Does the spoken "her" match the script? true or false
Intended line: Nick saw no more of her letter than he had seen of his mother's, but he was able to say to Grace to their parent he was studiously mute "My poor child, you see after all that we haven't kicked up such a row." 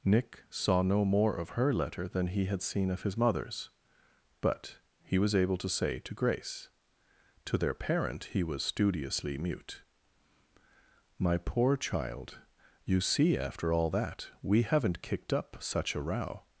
true